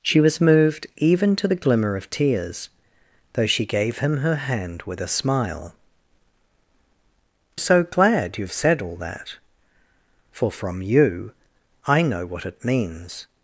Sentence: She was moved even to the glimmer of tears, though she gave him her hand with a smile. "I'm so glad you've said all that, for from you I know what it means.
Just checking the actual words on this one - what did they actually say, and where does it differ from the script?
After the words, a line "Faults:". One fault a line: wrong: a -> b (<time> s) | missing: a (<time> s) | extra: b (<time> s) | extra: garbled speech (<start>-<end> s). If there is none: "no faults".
She was moved even to the glimmer of tears, though she gave him her hand with a smile. "So glad you've said all that, for from you I know what it means.
Faults:
missing: I'm (5.8 s)